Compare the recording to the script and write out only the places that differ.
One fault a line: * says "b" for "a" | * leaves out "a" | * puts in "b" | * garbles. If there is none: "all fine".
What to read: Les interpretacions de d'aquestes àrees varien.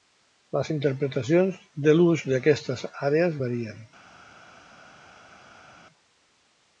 * puts in "l'ús"